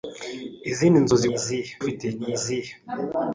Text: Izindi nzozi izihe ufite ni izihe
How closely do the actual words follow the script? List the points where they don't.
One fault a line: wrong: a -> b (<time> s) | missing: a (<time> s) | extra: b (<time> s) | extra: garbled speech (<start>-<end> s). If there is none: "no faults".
no faults